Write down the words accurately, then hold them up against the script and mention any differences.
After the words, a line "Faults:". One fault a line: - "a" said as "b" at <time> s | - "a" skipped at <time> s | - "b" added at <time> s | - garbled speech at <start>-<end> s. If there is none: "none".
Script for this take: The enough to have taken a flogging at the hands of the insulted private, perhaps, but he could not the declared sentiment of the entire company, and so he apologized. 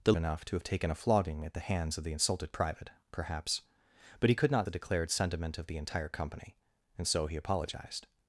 The enough to have taken a flogging at the hands of the insulted private, perhaps, but he could not the declared sentiment of the entire company, and so he apologized.
Faults:
none